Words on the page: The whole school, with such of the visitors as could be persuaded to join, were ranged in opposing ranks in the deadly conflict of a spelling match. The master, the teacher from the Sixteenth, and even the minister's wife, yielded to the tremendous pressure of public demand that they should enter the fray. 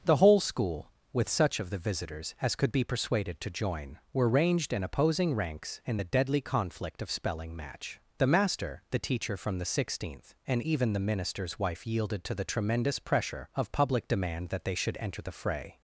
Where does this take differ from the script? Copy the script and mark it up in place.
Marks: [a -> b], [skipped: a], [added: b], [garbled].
The whole school, with such of the visitors as could be persuaded to join, were ranged in opposing ranks in the deadly conflict of [skipped: a] spelling match. The master, the teacher from the Sixteenth, and even the minister's wife, yielded to the tremendous pressure of public demand that they should enter the fray.